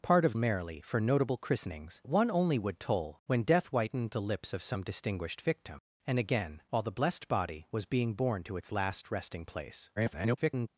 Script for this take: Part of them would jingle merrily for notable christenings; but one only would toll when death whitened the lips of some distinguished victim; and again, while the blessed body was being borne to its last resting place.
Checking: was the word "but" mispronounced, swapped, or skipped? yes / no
yes